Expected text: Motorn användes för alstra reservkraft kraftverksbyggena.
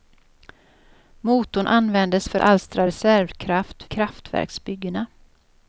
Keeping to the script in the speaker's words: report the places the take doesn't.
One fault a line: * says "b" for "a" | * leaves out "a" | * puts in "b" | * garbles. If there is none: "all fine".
all fine